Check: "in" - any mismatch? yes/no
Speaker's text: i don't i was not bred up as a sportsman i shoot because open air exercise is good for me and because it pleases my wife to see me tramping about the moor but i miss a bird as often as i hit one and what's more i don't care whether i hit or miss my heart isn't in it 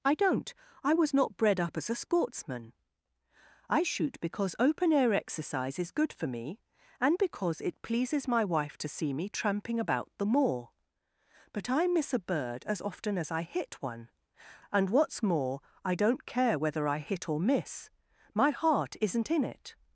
no